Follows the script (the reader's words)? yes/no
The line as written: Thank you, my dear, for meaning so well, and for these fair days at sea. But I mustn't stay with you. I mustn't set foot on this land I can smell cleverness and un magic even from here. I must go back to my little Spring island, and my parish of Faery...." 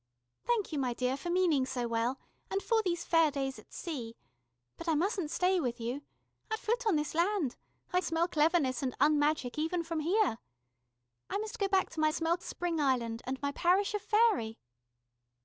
no